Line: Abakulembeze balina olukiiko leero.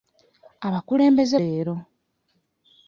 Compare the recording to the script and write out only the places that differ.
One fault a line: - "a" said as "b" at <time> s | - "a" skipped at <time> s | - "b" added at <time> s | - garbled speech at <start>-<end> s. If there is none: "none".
- "balina olukiiko" skipped at 1.4 s